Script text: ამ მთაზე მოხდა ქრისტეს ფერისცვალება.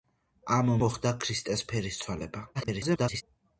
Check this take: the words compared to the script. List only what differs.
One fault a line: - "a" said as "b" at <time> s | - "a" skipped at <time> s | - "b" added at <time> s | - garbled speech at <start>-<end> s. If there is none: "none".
- "მთაზე" skipped at 0.7 s
- garbled speech at 2.5-3.2 s